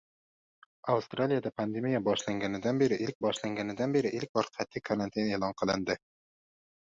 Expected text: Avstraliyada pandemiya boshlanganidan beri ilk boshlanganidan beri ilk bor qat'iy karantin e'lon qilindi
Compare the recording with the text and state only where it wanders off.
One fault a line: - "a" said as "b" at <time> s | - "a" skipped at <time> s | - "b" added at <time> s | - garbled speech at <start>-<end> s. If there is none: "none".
none